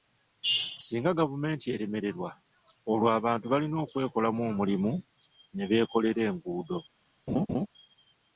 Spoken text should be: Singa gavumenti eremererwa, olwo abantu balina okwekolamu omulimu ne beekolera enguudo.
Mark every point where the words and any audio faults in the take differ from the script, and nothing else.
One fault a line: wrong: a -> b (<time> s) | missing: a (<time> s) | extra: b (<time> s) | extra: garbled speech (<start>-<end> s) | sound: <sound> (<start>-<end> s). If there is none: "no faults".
sound: laugh (7.3-7.7 s)